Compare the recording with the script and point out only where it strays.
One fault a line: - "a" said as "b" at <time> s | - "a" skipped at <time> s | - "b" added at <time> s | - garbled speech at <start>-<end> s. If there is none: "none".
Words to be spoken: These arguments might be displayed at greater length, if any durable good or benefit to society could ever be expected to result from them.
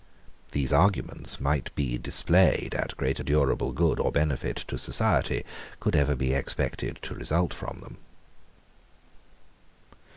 - "length if any" skipped at 3.2 s